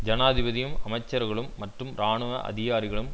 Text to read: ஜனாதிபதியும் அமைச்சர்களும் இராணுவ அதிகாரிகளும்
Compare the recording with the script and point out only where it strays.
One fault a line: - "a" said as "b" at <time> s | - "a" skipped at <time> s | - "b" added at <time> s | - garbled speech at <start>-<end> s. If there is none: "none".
- "மற்றும்" added at 1.6 s